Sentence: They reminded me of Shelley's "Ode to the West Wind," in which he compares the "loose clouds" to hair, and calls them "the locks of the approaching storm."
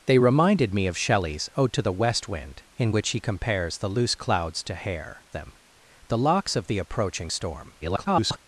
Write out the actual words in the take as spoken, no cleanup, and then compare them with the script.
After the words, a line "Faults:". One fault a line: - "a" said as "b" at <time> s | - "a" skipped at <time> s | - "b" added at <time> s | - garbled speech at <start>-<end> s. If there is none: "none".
They reminded me of Shelley's "Ode to the West Wind," in which he compares the "loose clouds" to hair, them "the locks of the approaching storm." [garbled]
Faults:
- "and calls" skipped at 5.2 s
- garbled speech at 7.8-8.4 s